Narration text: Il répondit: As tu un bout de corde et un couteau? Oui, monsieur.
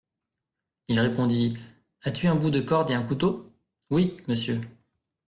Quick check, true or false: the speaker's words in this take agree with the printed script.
true